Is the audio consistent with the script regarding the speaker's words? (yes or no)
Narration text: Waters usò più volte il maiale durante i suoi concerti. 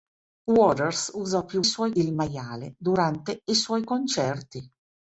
no